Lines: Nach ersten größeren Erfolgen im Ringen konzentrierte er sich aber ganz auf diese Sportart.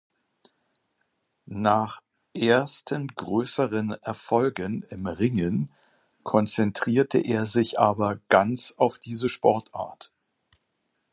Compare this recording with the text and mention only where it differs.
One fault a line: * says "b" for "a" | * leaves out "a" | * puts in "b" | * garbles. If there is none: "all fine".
all fine